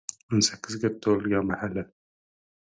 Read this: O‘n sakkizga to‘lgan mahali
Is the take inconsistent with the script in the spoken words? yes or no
no